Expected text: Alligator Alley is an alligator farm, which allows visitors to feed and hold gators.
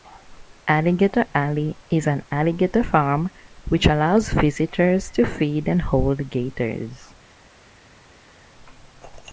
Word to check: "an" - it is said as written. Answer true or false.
true